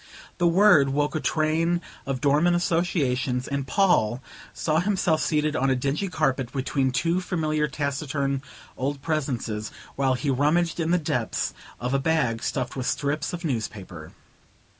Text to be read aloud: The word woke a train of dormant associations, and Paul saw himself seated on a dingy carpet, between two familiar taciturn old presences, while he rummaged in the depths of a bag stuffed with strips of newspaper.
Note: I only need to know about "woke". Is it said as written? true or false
true